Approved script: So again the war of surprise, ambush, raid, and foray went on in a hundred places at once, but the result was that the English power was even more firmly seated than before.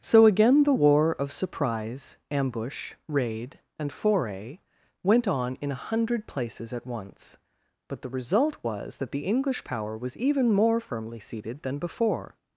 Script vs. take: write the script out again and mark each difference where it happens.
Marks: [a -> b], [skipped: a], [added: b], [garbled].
So again the war of surprise, ambush, raid, and foray went on in a hundred places at once, but the result was that the English power was even more firmly seated than before.